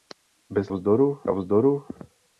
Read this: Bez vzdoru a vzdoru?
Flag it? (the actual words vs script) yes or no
no